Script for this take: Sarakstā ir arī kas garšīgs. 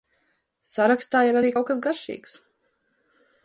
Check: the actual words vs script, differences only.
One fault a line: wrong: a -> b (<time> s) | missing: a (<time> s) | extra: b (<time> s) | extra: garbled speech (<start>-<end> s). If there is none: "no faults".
extra: kaut (1.5 s)